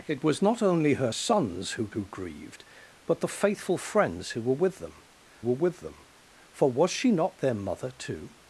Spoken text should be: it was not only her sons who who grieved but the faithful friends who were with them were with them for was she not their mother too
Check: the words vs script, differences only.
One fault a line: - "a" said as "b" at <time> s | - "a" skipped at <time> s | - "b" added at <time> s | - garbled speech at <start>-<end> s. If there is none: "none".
none